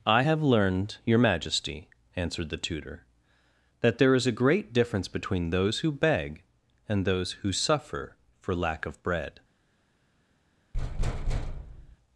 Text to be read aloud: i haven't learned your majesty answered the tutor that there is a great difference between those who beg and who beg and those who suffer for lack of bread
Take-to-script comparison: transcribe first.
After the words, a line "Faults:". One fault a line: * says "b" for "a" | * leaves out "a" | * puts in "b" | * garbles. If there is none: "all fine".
i have learned your majesty answered the tutor that there is a great difference between those who beg and those who suffer for lack of bread
Faults:
* says "have" for "haven't"
* leaves out "who beg and"